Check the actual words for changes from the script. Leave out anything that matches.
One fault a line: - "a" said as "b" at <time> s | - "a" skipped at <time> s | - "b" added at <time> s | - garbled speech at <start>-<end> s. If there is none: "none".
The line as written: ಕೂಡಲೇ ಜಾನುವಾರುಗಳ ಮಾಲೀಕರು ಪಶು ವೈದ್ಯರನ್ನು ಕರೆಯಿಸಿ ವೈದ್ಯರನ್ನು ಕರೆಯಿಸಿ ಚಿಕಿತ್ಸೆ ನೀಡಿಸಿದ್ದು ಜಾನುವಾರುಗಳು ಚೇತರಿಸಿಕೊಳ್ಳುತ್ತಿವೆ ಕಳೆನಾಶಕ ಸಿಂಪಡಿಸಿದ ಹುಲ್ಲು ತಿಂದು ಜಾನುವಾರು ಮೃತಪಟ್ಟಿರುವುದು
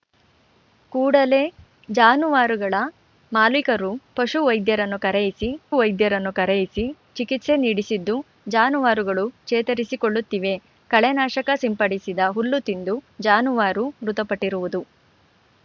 none